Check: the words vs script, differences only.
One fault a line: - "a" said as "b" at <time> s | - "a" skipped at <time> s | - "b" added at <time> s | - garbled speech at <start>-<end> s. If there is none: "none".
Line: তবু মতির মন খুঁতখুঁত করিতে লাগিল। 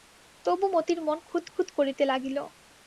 none